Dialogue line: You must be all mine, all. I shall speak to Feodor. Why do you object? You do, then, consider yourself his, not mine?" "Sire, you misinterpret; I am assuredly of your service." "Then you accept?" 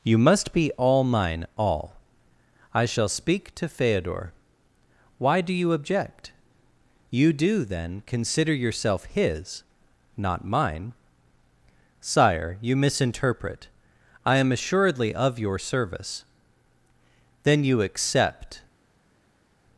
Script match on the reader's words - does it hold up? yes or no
yes